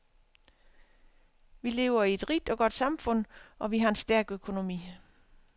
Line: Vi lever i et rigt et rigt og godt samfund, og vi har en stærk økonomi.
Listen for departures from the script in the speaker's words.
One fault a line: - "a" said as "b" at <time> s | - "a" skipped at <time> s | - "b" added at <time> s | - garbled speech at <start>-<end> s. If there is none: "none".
- "et rigt" skipped at 2.5 s